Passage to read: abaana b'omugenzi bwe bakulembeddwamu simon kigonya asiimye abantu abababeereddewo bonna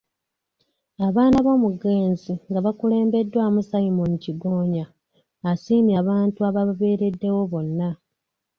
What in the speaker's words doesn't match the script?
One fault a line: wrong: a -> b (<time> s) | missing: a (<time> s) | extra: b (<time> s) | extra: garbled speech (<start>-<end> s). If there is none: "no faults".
wrong: bwe -> nga (2.5 s)